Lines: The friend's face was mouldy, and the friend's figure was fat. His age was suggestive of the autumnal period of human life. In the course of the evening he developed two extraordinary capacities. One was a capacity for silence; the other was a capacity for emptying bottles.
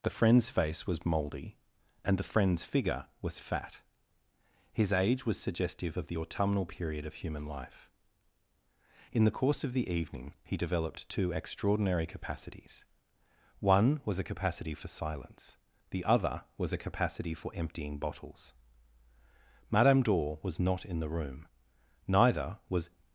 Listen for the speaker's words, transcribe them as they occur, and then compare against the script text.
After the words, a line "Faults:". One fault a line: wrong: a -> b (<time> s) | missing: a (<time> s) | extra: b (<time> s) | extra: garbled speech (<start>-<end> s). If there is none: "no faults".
The friend's face was mouldy, and the friend's figure was fat. His age was suggestive of the autumnal period of human life. In the course of the evening he developed two extraordinary capacities. One was a capacity for silence; the other was a capacity for emptying bottles. Madame Dor was not in the room. Neither was
Faults:
extra: Madame Dor was not in the room Neither was (19.7 s)